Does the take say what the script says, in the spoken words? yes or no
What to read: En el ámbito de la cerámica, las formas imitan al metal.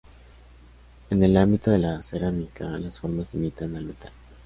yes